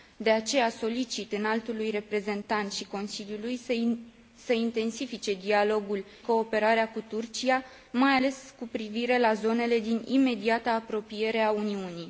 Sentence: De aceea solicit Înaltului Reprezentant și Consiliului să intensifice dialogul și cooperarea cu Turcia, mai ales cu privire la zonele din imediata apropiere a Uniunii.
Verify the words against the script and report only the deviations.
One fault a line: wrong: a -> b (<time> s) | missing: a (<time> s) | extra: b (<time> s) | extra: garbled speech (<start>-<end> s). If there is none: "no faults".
missing: și (6.0 s)